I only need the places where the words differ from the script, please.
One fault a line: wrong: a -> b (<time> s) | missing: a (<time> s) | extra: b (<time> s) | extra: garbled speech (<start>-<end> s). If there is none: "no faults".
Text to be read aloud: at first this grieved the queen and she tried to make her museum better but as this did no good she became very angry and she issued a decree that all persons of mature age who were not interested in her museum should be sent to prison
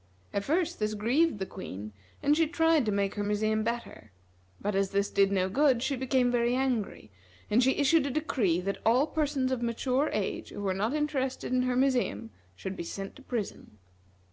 no faults